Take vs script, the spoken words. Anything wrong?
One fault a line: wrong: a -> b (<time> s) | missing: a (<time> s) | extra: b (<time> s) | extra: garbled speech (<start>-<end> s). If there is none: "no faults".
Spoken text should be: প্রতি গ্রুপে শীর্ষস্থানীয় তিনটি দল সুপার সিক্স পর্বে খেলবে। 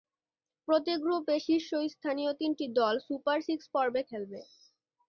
no faults